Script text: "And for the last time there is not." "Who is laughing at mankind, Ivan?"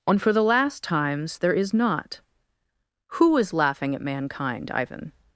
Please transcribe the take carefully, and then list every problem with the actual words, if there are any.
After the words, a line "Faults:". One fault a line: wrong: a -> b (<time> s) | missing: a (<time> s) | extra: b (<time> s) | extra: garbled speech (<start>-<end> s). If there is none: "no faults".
"And for the last times there is not." "Who is laughing at mankind, Ivan?"
Faults:
wrong: time -> times (0.8 s)